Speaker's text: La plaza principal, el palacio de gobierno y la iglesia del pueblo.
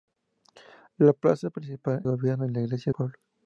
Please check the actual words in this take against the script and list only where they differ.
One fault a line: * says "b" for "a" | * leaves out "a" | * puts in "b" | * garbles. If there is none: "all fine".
* leaves out "el palacio de"
* leaves out "del"